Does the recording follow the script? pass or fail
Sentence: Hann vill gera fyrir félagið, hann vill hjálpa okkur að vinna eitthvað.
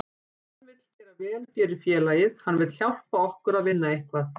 fail